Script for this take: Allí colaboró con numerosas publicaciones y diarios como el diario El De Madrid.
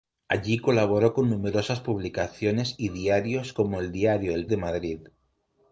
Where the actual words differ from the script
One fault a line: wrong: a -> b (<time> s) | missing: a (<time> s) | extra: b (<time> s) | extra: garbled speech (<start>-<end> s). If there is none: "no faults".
no faults